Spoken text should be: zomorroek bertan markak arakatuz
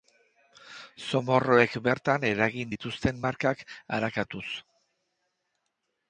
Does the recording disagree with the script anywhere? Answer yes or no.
yes